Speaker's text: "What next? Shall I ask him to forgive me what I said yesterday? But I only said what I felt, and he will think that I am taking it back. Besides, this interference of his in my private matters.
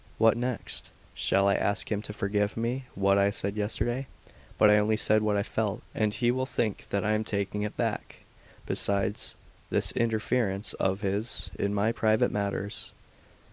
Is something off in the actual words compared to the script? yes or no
no